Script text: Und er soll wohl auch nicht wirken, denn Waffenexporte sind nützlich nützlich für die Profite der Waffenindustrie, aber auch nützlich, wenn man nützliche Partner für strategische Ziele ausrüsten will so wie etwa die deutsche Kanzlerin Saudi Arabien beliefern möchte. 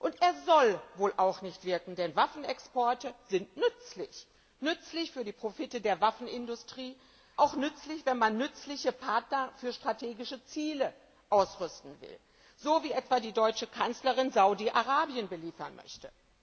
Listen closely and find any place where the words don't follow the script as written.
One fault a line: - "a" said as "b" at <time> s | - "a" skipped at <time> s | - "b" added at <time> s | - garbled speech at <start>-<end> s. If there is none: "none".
- "aber" skipped at 7.0 s